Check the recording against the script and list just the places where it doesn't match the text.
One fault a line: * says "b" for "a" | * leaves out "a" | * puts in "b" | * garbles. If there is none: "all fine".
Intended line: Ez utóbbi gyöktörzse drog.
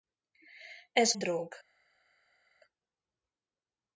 * leaves out "utóbbi gyöktörzse"